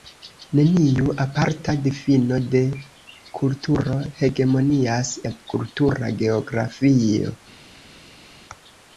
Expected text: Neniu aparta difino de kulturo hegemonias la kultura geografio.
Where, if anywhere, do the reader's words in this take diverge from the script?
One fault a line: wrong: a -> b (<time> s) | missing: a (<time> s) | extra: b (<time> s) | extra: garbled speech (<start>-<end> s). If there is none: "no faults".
no faults